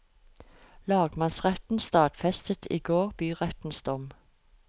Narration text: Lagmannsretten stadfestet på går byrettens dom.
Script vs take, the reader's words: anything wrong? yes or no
yes